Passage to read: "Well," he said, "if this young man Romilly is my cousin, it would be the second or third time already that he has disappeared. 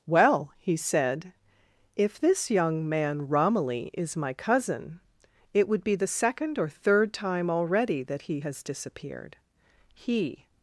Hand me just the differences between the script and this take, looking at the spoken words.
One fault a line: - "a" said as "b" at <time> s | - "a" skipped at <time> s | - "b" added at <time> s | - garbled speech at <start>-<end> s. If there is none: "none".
- "He" added at 9.9 s